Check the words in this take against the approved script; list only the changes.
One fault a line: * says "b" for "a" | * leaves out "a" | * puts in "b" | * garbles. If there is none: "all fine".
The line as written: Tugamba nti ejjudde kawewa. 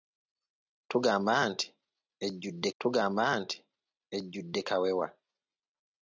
* puts in "tugamba nti ejjudde"